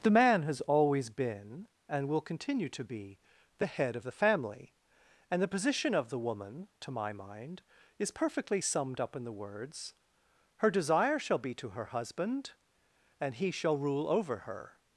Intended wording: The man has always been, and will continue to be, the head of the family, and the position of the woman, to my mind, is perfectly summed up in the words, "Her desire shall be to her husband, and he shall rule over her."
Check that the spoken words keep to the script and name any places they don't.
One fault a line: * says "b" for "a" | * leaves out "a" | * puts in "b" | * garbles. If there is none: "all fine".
all fine